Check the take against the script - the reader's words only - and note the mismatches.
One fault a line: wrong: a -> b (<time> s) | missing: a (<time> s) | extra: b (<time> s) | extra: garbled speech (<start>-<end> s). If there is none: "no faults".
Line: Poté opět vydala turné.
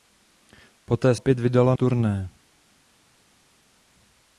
no faults